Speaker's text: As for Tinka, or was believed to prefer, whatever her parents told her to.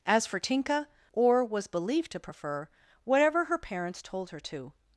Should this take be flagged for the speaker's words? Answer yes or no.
no